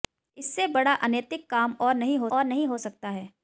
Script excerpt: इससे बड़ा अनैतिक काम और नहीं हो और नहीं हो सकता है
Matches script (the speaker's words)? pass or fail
pass